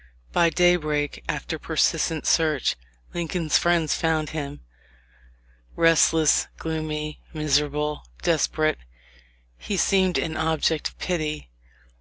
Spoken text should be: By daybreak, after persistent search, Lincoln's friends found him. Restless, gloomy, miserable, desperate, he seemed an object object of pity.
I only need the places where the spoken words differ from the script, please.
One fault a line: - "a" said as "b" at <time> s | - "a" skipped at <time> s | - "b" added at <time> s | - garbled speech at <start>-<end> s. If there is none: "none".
- "object" skipped at 10.9 s